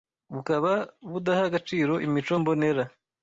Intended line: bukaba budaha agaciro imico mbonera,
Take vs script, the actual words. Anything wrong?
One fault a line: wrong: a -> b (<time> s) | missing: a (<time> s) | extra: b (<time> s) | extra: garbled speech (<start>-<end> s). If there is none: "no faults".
no faults